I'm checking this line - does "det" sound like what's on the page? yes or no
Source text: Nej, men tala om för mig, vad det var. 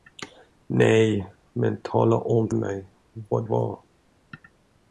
no